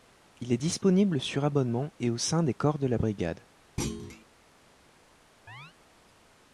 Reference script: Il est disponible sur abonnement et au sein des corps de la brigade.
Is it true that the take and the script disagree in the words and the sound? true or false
true